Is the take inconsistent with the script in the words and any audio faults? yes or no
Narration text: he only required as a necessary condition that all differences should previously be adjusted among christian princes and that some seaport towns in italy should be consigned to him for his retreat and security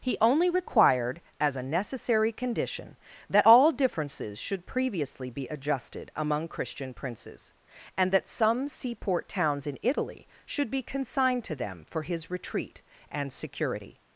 yes